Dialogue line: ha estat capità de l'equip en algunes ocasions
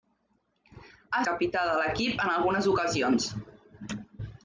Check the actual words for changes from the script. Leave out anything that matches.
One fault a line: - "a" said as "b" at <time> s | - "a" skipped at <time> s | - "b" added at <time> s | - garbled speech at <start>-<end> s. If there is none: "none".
- "estat" skipped at 1.2 s